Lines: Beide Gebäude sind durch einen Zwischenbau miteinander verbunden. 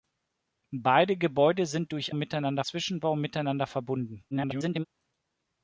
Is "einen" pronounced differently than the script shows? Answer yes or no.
yes